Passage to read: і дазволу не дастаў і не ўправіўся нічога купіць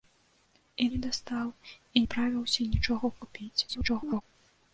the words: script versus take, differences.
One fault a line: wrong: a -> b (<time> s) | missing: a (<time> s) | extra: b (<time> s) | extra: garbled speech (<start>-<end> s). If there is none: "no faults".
missing: дазволу (0.9 s)
missing: не (2.0 s)
extra: garbled speech (3.7-4.2 s)